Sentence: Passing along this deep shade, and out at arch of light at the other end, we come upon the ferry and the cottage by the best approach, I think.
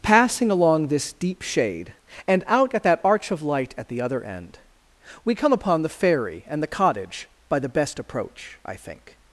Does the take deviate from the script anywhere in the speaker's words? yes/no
yes